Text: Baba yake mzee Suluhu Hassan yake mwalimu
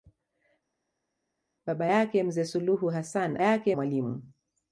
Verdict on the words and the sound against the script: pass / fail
pass